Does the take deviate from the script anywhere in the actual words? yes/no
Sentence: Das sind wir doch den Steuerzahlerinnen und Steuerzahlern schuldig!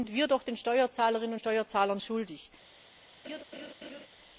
no